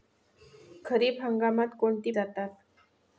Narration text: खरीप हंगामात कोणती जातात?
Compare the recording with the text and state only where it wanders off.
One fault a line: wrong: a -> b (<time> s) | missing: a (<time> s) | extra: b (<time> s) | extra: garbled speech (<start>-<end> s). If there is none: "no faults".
no faults